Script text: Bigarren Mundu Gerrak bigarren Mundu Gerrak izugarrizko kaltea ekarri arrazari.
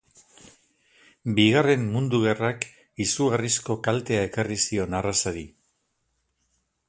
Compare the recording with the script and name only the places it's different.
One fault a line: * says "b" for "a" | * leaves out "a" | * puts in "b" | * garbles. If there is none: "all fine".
* leaves out "bigarren Mundu Gerrak"
* puts in "zion"